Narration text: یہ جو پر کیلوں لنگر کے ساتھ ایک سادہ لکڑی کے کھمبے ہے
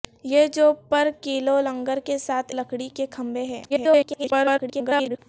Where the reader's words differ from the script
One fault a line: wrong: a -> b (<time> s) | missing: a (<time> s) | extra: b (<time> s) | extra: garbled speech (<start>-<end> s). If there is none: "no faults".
missing: ایک سادہ (2.5 s)
extra: garbled speech (3.7-5.2 s)